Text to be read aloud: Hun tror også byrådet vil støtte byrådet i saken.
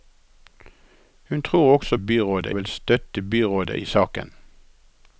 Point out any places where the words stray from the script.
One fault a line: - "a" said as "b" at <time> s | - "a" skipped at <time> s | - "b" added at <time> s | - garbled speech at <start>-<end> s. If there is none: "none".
none